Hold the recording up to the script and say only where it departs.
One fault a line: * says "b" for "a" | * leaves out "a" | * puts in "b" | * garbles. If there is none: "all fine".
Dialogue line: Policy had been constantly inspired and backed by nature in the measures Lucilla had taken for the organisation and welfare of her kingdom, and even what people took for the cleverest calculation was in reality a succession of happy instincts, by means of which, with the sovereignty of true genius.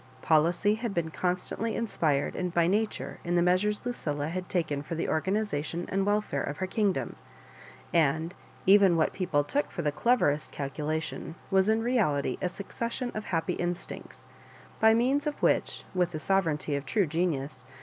* leaves out "backed"